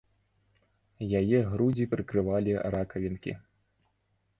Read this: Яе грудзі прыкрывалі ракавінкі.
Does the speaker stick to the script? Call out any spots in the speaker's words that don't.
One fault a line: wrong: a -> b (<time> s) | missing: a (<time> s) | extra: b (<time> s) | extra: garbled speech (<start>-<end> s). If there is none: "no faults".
no faults